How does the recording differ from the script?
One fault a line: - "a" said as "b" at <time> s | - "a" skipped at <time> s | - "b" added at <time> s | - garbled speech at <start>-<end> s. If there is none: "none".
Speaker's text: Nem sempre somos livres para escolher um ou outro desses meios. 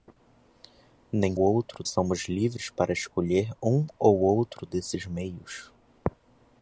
- "sempre" said as "outro" at 1.4 s